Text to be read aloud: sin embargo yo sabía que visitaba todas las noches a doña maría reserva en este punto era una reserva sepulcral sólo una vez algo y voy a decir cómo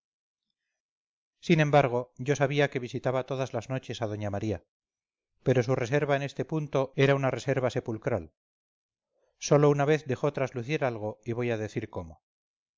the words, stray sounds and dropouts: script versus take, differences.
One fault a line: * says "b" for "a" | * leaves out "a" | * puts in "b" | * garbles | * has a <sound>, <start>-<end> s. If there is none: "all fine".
* puts in "pero su"
* puts in "dejó traslucir"